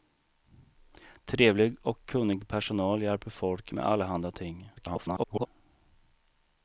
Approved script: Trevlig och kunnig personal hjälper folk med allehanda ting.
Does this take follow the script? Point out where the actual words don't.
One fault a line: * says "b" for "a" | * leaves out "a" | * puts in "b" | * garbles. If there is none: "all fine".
* garbles